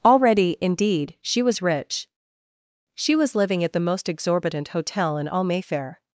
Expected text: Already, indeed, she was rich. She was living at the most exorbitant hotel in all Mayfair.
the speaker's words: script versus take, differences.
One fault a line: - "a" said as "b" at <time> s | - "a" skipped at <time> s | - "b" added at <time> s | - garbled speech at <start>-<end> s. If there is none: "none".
none